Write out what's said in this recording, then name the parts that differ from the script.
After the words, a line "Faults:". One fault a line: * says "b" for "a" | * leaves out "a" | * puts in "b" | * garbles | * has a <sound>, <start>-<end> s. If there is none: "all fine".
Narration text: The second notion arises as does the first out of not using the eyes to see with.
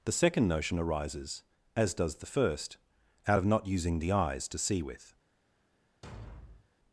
The second notion arises as does the first out of not using the eyes to see with.
Faults:
* has a thud, 6.0-6.7 s